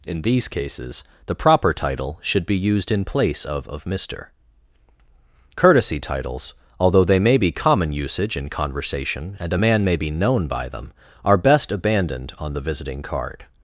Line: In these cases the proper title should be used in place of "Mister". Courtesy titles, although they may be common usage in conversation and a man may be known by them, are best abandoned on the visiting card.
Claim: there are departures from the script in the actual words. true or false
true